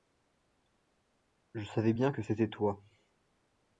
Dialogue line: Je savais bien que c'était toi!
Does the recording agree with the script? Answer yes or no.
yes